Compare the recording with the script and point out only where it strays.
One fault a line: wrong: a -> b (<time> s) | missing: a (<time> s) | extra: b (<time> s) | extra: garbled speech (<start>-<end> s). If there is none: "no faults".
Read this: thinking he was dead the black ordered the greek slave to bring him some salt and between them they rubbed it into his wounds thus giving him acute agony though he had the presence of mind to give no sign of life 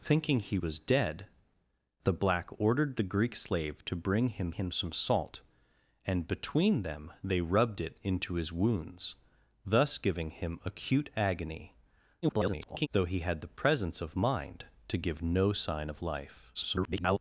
extra: him (4.5 s)
extra: garbled speech (12.2-12.9 s)
extra: garbled speech (16.5-17.2 s)